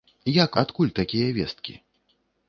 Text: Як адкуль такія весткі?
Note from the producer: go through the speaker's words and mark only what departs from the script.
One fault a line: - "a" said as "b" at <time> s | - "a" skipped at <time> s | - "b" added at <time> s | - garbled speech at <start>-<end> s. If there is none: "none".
none